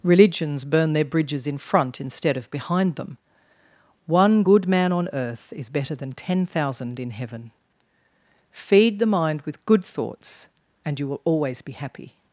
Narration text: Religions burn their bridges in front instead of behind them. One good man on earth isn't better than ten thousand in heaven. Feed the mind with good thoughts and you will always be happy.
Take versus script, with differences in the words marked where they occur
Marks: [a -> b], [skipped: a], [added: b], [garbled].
Religions burn their bridges in front instead of behind them. One good man on earth [isn't -> is] better than ten thousand in heaven. Feed the mind with good thoughts and you will always be happy.